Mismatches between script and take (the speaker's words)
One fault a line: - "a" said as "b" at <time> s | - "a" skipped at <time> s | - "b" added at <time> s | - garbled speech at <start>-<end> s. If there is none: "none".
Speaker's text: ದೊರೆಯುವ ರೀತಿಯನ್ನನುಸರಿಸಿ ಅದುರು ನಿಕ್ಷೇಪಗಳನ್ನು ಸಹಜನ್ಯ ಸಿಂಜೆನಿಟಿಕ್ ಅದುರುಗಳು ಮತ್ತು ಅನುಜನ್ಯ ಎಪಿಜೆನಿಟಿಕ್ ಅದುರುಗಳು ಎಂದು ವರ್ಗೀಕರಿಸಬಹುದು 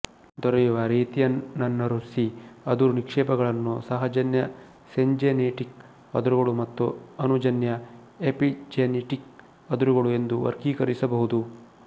none